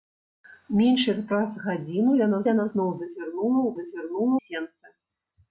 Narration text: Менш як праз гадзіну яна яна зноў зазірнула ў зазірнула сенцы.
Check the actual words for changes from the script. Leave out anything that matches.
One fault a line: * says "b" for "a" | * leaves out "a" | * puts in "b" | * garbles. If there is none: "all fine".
all fine